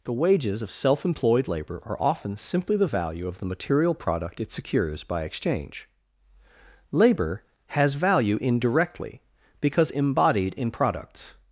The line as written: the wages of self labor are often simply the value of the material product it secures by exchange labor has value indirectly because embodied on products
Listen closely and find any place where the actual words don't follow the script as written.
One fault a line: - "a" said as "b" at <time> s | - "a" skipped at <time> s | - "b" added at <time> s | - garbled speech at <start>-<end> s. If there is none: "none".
- "employed" added at 1.0 s
- "on" said as "in" at 10.5 s